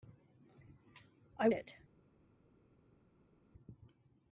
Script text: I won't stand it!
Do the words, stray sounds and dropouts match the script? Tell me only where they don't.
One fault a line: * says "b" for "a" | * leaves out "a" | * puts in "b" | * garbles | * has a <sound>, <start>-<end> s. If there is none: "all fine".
* leaves out "won't stand"